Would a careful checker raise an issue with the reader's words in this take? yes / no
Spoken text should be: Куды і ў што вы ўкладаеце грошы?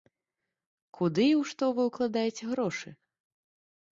no